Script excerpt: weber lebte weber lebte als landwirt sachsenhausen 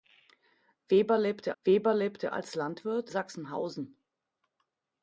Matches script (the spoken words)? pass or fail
pass